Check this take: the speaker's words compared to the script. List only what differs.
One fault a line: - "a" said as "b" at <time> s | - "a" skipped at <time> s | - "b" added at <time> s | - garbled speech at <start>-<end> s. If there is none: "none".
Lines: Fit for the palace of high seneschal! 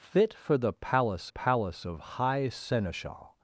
- "palace" added at 1.3 s